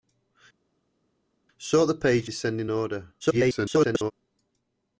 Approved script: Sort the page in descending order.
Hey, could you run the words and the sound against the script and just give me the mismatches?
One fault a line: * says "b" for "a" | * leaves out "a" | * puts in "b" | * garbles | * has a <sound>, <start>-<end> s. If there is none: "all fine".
* leaves out "in"
* garbles